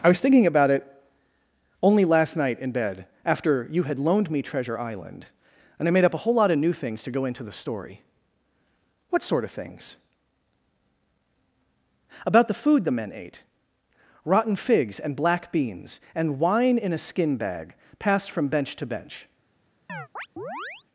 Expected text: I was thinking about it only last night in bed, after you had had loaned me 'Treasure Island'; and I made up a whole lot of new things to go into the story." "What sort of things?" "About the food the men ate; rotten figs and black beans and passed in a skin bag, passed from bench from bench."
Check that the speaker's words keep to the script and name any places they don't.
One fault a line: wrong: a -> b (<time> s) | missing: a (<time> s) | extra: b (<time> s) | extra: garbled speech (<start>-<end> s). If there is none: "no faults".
missing: had (4.0 s)
wrong: passed -> wine (16.4 s)
wrong: from -> to (18.8 s)